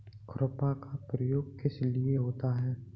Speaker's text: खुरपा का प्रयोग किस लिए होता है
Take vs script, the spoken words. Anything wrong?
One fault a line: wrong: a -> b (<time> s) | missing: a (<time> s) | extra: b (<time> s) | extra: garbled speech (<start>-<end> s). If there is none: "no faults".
no faults